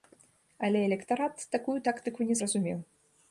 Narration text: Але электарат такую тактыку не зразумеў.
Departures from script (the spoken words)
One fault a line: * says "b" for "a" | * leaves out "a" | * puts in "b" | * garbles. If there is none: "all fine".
all fine